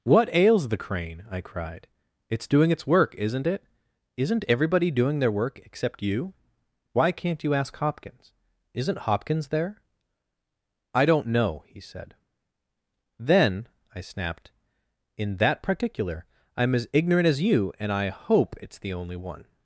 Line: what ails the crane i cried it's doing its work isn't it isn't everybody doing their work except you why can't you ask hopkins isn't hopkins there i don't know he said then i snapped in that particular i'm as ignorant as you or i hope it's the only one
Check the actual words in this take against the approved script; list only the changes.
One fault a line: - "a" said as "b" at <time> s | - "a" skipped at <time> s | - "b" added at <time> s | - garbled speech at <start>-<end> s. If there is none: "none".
- "or" said as "and" at 17.8 s